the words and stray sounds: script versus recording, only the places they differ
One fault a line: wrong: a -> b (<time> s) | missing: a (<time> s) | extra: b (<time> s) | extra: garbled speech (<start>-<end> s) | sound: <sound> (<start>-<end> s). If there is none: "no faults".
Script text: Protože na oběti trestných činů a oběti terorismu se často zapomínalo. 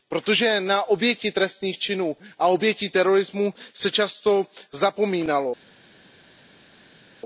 no faults